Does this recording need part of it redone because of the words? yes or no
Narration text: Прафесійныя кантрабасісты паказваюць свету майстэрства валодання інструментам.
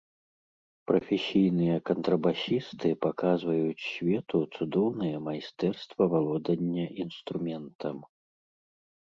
yes